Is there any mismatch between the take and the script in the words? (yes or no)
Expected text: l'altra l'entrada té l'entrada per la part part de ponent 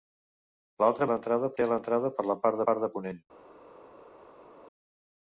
no